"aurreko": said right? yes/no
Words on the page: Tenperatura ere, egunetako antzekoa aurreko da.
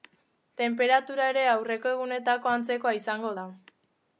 no